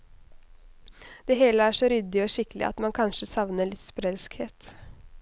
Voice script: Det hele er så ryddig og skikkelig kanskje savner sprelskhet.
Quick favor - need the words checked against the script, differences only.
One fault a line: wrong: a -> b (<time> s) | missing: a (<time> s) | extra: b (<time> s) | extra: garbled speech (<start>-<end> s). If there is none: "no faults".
extra: at man (2.7 s)
extra: litt (3.7 s)